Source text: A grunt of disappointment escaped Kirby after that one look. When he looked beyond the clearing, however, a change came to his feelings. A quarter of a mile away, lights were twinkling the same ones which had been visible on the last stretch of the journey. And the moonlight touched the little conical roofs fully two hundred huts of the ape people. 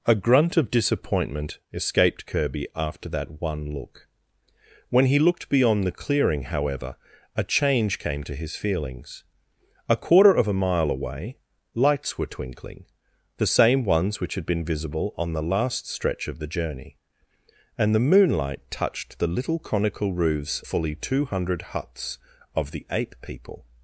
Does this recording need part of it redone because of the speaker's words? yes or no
no